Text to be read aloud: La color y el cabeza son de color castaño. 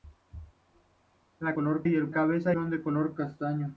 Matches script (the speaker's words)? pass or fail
pass